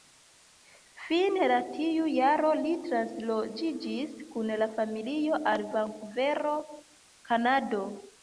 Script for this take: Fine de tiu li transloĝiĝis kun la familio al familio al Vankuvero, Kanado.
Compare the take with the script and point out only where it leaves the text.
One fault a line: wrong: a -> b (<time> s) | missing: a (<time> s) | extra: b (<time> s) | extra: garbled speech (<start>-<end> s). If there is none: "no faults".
extra: jaro (2.1 s)
missing: familio al (5.7 s)